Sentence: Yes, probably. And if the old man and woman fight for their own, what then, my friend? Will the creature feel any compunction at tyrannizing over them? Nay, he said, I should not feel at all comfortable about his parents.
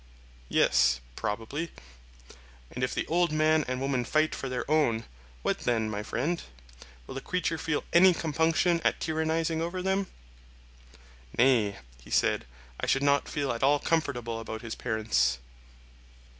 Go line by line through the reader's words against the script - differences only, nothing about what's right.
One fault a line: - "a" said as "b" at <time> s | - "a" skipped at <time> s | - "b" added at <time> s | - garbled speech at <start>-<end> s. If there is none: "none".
none